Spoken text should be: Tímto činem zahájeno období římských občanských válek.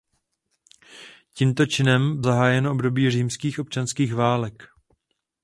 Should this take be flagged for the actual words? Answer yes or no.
no